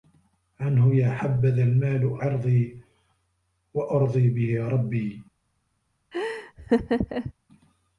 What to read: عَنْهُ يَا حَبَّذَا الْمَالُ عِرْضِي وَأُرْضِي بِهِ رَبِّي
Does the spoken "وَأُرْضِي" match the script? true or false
true